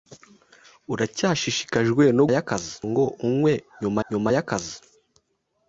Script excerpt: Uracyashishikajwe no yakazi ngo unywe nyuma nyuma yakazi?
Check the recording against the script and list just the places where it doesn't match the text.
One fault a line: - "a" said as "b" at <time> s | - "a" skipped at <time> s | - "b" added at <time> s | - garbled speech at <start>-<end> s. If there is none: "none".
none